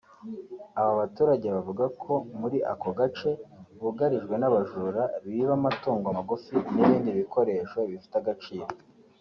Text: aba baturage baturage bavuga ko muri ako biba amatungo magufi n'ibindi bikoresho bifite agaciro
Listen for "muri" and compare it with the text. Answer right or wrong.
right